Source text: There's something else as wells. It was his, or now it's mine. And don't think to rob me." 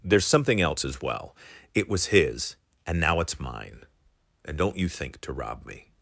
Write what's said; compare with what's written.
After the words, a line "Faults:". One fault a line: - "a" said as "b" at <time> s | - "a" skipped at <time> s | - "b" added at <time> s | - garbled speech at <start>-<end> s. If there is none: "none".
There's something else as well. It was his, and now it's mine. And don't you think to rob me."
Faults:
- "wells" said as "well" at 1.0 s
- "or" said as "and" at 2.9 s
- "you" added at 4.8 s